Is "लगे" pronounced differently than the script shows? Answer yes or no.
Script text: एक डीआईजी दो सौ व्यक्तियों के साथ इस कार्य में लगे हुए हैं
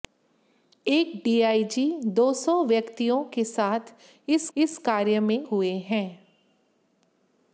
yes